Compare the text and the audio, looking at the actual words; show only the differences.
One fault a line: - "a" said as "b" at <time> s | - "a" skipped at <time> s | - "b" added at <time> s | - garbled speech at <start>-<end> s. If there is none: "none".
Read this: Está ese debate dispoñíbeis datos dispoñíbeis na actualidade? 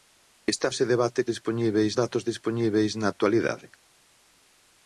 none